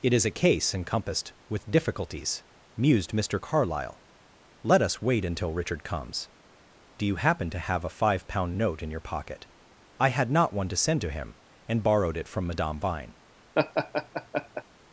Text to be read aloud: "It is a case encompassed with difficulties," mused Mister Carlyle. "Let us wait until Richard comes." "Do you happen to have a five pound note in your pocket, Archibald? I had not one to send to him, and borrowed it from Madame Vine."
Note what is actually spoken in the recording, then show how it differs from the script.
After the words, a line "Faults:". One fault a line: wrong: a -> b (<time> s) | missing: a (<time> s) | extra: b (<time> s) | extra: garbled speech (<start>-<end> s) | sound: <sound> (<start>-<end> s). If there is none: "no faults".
"It is a case encompassed with difficulties," mused Mister Carlyle. "Let us wait until Richard comes." "Do you happen to have a five pound note in your pocket, I had not one to send to him, and borrowed it from Madame Vine."
Faults:
missing: Archibald (9.5 s)
sound: laugh (13.5-14.6 s)